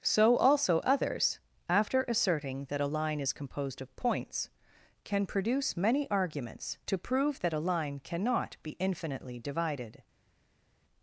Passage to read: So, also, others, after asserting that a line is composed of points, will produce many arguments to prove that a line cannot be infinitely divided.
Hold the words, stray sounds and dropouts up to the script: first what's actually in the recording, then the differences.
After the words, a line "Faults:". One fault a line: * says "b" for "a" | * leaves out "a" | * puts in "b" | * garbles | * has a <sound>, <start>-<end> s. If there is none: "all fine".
So, also, others, after asserting that a line is composed of points, can produce many arguments to prove that a line cannot be infinitely divided.
Faults:
* says "can" for "will"